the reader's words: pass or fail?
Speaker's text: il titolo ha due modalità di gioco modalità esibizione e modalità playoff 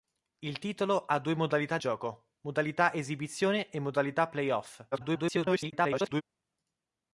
fail